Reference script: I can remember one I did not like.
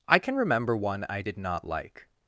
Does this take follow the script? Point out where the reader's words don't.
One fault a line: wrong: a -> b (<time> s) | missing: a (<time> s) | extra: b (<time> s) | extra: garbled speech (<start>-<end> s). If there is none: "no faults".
no faults